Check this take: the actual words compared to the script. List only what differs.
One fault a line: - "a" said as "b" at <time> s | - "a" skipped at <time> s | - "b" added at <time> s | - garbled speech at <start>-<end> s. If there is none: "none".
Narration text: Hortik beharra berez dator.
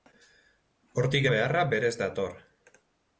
none